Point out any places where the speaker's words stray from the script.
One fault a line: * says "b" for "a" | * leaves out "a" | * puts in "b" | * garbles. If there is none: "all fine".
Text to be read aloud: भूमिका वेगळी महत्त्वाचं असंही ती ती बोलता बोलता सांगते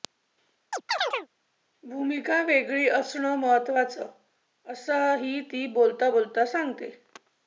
* puts in "असणं"
* leaves out "ती"